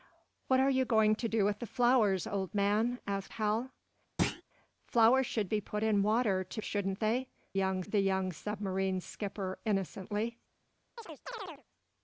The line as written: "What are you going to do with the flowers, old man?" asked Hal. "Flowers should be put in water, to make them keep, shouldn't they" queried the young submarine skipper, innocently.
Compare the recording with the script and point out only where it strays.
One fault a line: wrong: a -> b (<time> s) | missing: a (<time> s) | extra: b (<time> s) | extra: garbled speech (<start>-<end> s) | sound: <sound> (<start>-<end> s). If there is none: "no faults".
sound: thud (4.2-4.4 s)
missing: make them keep (6.6 s)
wrong: queried -> young (7.5 s)
sound: chirp (11.0-11.6 s)